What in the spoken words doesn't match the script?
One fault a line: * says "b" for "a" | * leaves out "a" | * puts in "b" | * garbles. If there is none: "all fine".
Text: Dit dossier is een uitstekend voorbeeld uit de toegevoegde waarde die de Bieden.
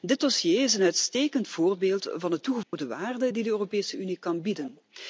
* says "van" for "uit"
* puts in "Europese Unie kan"